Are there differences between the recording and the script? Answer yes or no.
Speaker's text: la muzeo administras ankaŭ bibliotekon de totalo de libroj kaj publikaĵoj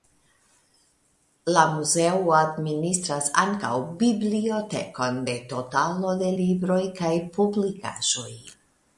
no